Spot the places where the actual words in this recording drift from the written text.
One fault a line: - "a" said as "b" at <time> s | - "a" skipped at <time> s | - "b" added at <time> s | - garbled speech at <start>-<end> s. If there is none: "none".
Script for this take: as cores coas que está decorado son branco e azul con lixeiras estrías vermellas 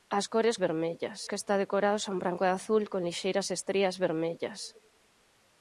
- "coas" said as "vermellas" at 0.7 s